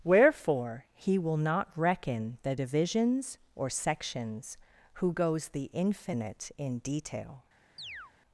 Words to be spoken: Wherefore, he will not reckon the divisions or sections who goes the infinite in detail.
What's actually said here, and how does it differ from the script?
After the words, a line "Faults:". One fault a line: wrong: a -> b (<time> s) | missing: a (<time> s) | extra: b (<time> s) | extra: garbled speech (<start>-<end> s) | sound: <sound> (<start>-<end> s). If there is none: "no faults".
Wherefore, he will not reckon the divisions or sections who goes the infinite in detail.
Faults:
sound: chirp (7.8-8.1 s)